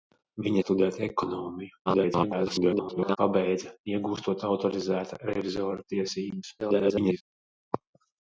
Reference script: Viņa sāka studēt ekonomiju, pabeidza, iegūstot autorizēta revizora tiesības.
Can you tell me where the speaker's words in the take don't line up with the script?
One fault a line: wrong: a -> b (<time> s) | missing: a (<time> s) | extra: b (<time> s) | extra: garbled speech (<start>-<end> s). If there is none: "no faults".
missing: sāka (0.6 s)
extra: garbled speech (1.9-3.2 s)
extra: garbled speech (6.6-7.2 s)